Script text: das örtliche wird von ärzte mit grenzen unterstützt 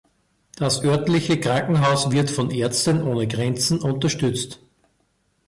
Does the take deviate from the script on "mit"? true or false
true